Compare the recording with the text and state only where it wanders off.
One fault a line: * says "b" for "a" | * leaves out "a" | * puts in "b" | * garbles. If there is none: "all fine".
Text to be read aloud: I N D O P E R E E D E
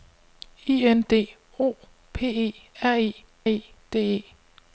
all fine